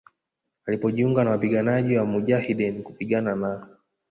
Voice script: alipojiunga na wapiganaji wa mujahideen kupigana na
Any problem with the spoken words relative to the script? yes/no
no